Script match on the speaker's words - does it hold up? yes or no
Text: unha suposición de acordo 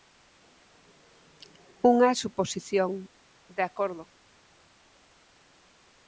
yes